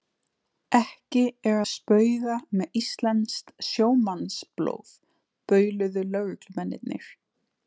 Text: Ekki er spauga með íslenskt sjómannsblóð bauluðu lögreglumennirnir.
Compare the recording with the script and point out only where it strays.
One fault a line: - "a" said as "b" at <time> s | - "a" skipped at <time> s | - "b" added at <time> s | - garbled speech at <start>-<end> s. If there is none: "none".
none